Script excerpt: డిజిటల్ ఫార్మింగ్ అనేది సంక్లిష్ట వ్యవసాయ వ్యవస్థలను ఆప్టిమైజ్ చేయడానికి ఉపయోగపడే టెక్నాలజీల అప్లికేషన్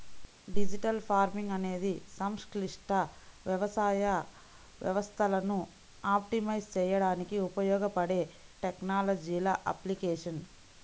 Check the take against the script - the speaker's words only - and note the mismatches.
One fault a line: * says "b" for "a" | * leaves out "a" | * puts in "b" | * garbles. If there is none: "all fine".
all fine